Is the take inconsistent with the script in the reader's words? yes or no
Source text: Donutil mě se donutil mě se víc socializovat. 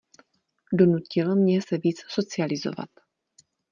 yes